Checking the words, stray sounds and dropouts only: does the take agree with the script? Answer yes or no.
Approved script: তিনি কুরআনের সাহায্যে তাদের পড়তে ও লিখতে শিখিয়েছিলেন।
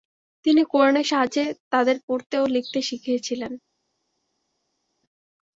yes